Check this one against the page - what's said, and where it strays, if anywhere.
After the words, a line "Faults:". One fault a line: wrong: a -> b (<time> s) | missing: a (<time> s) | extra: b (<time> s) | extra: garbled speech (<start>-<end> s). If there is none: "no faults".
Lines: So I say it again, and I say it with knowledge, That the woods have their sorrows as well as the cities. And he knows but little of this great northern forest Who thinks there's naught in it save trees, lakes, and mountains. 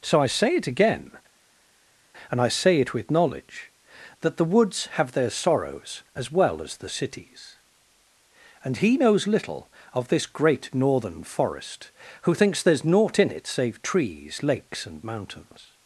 So I say it again, and I say it with knowledge, That the woods have their sorrows as well as the cities. And he knows little of this great northern forest Who thinks there's naught in it save trees, lakes, and mountains.
Faults:
missing: but (9.3 s)